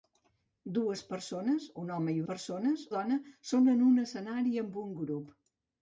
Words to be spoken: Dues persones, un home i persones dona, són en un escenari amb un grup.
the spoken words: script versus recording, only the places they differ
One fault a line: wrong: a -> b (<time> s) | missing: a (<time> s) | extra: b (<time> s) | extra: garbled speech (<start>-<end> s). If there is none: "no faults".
no faults